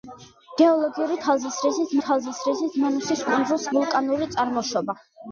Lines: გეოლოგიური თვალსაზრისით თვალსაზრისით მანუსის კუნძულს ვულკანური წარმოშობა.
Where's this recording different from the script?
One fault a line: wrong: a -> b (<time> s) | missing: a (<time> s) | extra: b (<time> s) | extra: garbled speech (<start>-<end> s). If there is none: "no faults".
no faults